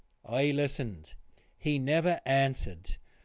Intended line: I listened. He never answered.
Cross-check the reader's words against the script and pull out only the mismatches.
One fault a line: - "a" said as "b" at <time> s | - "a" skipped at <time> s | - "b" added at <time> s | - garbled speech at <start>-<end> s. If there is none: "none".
none